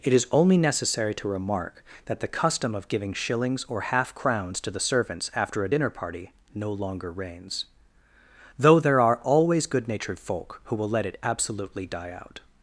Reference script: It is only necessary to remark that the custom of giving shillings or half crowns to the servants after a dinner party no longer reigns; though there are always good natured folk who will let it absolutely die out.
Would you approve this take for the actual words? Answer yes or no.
yes